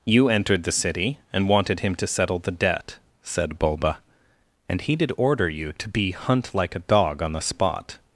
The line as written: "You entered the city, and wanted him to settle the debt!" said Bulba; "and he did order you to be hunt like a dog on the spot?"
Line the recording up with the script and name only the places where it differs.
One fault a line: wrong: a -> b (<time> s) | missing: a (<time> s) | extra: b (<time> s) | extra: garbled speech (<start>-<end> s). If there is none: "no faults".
no faults